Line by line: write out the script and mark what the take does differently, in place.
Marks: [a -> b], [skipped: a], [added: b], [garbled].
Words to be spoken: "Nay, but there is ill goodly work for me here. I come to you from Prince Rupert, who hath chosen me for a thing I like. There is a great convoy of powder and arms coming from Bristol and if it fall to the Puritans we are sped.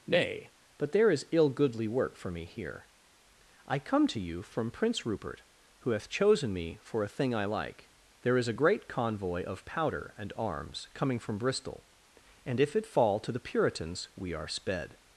"Nay, but there is ill goodly work for me here. I come to you from Prince Rupert, who hath chosen me for a thing I like. There is a great convoy of powder and arms coming from Bristol and if it fall to the Puritans we are sped.